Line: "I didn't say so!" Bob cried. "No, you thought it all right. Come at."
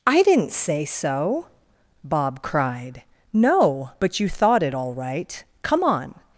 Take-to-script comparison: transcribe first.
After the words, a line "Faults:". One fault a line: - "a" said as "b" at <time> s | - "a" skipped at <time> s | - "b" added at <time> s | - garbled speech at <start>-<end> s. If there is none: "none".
"I didn't say so!" Bob cried. "No, but you thought it all right. Come on."
Faults:
- "but" added at 4.0 s
- "at" said as "on" at 5.8 s